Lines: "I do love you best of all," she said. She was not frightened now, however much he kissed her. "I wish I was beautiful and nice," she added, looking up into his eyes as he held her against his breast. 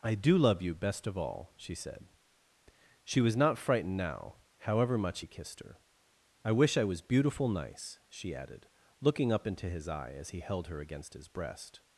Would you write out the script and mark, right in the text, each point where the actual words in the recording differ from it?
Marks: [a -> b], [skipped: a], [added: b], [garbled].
"I do love you best of all," she said. She was not frightened now, however much he kissed her. "I wish I was beautiful [skipped: and] nice," she added, looking up into his [eyes -> eye] as he held her against his breast.